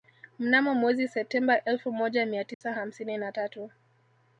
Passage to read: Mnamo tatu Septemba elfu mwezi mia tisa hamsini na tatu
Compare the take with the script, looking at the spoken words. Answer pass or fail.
fail